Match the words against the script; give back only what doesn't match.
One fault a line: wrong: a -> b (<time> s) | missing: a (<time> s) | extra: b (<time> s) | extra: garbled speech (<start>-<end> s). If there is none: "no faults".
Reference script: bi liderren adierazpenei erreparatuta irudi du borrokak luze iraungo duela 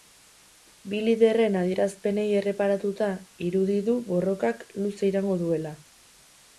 no faults